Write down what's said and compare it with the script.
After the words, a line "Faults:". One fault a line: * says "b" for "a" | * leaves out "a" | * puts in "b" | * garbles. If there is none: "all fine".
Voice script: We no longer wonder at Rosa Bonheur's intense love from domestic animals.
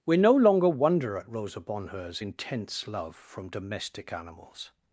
We no longer wonder at Rosa Bonheur's intense love from domestic animals.
Faults:
all fine